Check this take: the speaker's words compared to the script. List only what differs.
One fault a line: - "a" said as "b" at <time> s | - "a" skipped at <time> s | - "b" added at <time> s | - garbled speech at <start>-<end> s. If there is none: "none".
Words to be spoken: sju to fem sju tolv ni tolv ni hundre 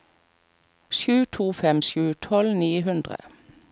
- "tolv ni" skipped at 2.7 s